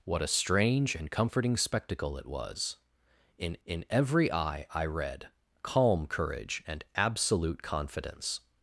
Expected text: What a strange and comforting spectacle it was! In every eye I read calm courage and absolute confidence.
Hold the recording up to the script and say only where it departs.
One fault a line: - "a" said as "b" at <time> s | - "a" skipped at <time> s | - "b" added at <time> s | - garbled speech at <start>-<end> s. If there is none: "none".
- "in" added at 3.6 s